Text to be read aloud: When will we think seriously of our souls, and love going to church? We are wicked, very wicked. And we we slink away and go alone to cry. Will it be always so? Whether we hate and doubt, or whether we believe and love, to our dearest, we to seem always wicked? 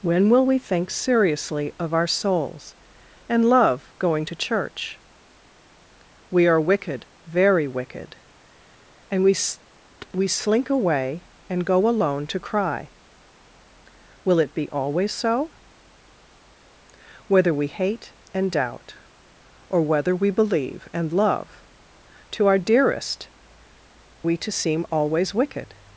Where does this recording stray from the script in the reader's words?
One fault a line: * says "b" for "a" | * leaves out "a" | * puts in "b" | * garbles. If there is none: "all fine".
all fine